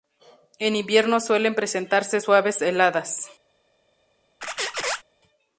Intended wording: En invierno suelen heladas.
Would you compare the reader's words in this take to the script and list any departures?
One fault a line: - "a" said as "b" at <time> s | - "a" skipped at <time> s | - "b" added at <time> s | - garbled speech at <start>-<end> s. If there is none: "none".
- "presentarse suaves" added at 1.5 s